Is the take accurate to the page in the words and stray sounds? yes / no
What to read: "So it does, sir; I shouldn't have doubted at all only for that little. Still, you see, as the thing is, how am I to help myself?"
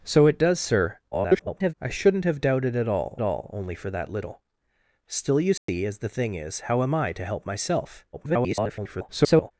no